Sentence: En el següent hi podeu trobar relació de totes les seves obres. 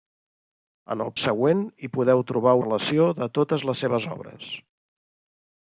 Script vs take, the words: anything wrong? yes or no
no